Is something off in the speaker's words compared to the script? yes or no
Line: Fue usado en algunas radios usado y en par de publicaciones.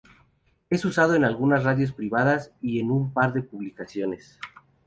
yes